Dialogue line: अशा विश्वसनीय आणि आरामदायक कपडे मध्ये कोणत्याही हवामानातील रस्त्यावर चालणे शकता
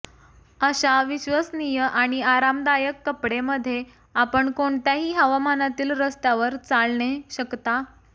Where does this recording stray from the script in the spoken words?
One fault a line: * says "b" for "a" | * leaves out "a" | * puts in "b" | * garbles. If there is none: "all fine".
* puts in "आपण"